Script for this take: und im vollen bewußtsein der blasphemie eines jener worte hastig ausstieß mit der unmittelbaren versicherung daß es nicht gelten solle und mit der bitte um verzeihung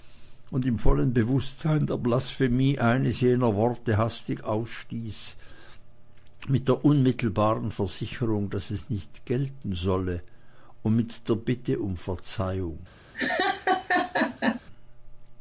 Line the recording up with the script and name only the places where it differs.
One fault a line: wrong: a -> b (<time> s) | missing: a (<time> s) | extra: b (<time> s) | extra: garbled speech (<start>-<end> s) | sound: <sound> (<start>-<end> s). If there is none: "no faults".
sound: laugh (13.1-14.6 s)